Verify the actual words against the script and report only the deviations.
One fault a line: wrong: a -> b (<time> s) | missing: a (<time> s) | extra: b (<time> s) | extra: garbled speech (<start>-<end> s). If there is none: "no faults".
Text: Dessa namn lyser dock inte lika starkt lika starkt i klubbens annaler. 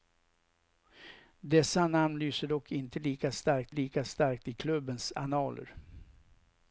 no faults